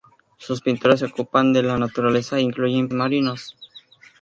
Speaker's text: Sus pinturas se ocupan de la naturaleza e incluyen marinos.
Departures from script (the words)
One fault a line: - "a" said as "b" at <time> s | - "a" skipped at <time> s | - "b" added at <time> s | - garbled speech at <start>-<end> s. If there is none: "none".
none